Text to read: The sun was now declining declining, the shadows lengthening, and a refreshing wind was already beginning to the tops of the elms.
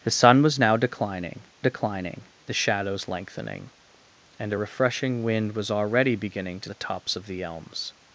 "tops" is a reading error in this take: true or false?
false